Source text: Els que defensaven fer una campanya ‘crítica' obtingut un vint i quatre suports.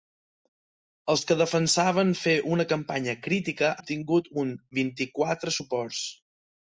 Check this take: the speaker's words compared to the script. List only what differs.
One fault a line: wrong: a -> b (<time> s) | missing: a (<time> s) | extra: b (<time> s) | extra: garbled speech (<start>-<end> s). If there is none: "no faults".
no faults